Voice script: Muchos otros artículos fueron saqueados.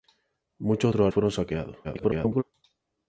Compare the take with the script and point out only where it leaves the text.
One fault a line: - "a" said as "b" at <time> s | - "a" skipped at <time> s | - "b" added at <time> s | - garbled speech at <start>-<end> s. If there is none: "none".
- "artículos" skipped at 1.1 s
- garbled speech at 1.8-2.4 s